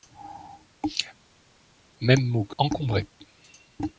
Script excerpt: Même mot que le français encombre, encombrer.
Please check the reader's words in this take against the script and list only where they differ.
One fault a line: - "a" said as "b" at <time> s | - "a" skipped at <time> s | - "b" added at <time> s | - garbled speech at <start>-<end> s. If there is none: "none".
- "le français encombre" skipped at 2.6 s